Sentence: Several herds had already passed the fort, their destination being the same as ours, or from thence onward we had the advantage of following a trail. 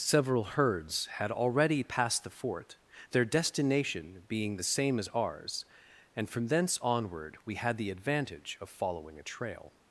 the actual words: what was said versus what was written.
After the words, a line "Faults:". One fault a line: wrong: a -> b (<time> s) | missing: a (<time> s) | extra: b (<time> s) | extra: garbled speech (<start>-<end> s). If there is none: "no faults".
Several herds had already passed the fort, their destination being the same as ours, and from thence onward we had the advantage of following a trail.
Faults:
wrong: or -> and (6.2 s)